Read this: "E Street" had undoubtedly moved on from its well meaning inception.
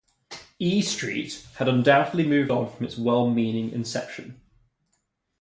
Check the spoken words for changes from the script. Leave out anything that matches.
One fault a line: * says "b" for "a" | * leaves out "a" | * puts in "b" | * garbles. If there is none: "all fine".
all fine